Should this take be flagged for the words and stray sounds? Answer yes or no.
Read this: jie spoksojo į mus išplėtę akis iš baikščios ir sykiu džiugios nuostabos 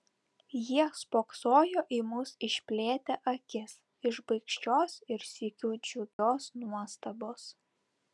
yes